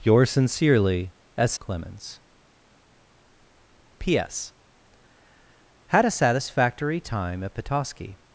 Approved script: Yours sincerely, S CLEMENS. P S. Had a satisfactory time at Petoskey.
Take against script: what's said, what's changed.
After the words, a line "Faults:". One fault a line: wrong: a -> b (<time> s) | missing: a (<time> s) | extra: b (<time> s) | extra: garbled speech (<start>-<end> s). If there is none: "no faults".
Yours sincerely, S CLEMENS. P S. Had a satisfactory time at Petoskey.
Faults:
no faults